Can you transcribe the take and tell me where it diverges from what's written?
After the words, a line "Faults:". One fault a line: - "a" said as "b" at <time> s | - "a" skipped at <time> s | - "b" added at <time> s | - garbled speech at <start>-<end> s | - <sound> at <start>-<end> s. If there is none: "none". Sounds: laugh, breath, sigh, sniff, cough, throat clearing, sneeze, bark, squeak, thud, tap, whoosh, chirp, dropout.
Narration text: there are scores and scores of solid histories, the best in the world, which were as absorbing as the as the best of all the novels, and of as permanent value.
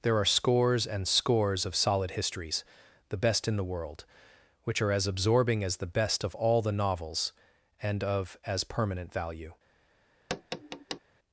there are scores and scores of solid histories, the best in the world, which are as absorbing as the best of all the novels, and of as permanent value.
Faults:
- "were" said as "are" at 4.8 s
- "as the" skipped at 5.9 s
- tap at 10.3-11.0 s